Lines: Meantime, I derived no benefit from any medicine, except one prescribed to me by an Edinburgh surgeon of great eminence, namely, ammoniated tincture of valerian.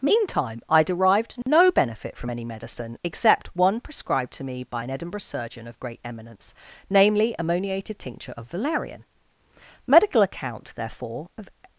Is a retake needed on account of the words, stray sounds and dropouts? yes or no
yes